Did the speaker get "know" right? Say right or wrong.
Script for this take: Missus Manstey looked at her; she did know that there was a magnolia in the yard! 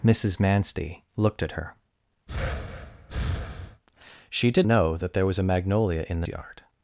right